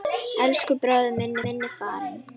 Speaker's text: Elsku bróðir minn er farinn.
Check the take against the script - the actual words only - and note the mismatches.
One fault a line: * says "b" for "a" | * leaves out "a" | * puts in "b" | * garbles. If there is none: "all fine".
* puts in "minn"